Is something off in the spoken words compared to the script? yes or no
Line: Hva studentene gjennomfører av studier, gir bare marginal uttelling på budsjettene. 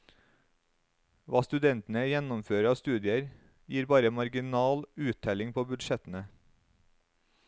no